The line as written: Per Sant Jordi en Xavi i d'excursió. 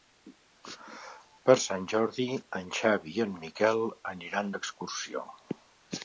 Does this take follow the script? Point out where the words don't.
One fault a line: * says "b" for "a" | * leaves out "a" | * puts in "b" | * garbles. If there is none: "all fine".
* puts in "en Miquel aniran"